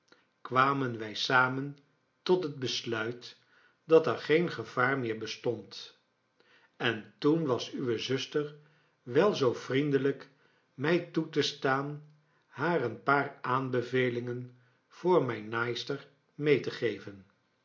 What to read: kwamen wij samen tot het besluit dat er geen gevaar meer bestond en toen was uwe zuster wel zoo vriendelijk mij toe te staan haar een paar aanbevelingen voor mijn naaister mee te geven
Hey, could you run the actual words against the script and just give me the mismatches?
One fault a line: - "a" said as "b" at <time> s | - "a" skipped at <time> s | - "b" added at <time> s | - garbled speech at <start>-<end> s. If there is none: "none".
none